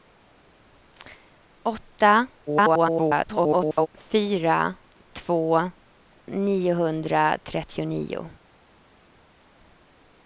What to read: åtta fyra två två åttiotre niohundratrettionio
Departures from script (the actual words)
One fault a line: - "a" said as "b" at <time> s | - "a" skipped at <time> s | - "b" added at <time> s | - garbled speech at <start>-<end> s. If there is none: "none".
- garbled speech at 2.5-3.9 s
- "två åttiotre" skipped at 5.7 s